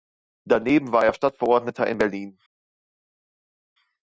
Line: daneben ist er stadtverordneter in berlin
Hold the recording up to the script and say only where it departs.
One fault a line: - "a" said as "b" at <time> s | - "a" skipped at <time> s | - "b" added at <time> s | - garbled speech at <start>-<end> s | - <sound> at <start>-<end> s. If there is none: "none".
- "ist" said as "war" at 0.9 s